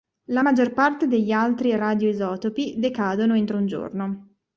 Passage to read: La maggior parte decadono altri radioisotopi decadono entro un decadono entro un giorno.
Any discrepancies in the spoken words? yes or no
yes